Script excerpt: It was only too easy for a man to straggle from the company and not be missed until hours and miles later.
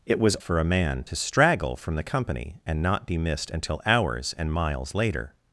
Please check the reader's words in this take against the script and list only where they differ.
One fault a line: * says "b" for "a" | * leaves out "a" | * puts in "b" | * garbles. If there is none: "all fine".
* leaves out "only too easy"